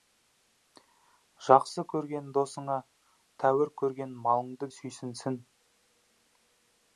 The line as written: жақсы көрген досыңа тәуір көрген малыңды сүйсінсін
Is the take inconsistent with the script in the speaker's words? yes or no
no